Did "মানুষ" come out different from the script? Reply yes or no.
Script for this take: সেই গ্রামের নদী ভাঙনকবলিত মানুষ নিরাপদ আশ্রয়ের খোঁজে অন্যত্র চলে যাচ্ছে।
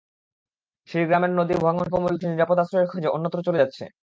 yes